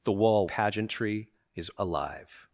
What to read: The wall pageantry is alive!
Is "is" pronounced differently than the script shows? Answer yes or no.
no